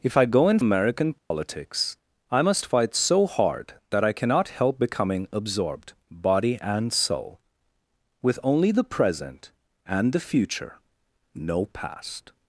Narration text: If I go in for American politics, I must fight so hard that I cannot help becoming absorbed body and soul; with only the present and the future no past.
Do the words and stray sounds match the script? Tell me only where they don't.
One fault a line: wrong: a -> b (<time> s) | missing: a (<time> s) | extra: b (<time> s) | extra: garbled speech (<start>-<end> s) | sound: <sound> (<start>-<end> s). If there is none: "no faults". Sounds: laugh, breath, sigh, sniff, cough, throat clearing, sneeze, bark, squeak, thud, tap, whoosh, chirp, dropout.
missing: for (0.6 s)
sound: dropout (1.2-1.3 s)